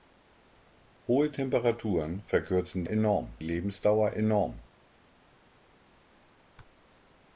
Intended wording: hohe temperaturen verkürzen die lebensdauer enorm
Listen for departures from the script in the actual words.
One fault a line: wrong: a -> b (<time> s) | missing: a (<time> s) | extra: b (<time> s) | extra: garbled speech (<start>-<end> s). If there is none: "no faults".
wrong: die -> enorm (2.9 s)